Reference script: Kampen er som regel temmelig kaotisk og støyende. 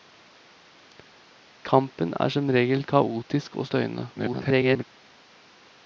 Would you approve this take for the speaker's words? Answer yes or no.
no